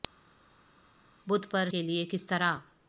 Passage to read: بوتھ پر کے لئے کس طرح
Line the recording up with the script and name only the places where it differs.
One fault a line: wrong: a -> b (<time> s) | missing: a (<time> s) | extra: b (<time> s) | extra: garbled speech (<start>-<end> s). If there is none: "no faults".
no faults